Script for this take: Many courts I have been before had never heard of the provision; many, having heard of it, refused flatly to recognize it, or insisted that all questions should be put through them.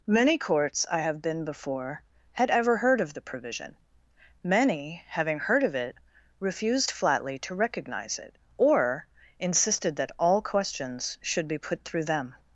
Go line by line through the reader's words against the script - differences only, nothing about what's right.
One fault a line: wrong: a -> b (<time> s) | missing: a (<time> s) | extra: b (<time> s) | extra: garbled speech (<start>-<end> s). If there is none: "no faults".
wrong: never -> ever (2.5 s)